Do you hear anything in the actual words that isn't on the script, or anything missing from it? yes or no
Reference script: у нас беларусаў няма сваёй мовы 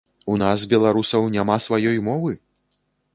no